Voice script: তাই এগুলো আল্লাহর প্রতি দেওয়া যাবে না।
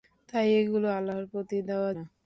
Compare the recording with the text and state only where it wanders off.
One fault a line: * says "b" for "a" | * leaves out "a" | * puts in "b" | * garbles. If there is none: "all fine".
* leaves out "যাবে"